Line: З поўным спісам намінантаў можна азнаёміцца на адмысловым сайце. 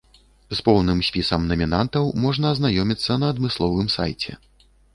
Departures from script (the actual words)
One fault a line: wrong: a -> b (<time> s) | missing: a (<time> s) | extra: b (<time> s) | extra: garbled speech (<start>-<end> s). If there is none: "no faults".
no faults